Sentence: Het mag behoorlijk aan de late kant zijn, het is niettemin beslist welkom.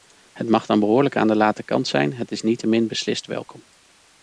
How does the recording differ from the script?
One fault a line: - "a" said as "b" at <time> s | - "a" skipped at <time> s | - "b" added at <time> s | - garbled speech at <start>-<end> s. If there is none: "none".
- "dan" added at 0.7 s